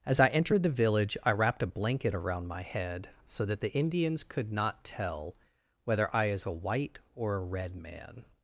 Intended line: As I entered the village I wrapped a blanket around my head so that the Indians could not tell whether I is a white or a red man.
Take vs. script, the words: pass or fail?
pass